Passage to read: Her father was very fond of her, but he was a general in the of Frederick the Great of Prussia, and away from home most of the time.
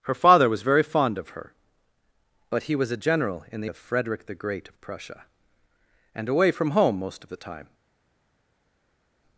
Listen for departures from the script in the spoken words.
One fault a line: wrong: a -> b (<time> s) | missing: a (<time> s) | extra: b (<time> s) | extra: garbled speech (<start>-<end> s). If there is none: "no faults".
no faults